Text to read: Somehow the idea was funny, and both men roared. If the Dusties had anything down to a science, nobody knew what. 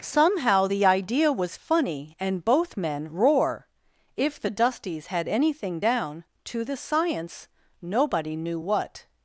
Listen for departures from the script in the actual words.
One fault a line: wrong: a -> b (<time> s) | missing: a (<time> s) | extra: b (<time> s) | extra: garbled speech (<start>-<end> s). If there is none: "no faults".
wrong: roared -> roar (3.1 s)
wrong: a -> the (6.6 s)